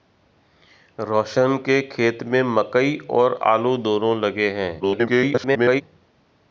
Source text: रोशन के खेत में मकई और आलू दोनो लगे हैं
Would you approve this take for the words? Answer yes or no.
no